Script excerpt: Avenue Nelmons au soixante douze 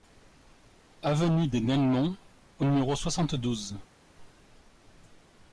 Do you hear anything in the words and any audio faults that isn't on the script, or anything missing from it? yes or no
yes